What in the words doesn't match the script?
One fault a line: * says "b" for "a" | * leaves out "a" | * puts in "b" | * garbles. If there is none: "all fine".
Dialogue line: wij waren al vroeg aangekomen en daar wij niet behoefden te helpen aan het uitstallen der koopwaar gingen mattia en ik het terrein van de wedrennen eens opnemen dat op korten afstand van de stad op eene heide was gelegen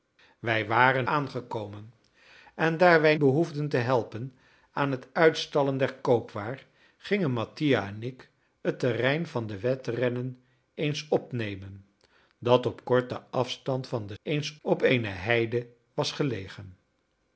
* leaves out "al vroeg"
* leaves out "niet"
* says "eens" for "stad"